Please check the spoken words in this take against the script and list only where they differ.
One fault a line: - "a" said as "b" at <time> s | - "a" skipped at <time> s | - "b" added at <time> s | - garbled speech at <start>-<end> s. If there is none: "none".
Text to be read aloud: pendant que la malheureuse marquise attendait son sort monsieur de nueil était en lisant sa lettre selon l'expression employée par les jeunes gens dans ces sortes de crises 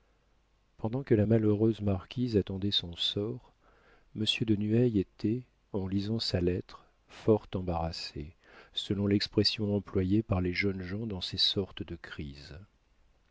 - "fort embarrassé" added at 7.1 s